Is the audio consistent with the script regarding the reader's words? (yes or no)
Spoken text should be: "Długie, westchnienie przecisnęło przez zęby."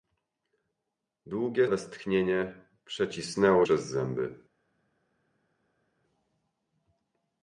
yes